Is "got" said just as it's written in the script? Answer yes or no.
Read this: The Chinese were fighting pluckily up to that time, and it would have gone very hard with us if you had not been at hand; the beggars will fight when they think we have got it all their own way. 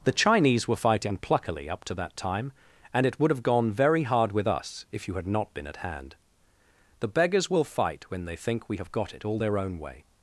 yes